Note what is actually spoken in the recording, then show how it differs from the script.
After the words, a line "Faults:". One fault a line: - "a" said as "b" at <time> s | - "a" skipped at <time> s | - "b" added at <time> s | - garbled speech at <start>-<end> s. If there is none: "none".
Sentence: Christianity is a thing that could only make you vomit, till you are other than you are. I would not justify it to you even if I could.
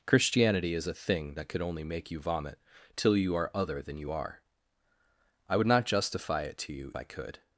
Christianity is a thing that could only make you vomit, till you are other than you are. I would not justify it to you I could.
Faults:
- "even if" skipped at 6.9 s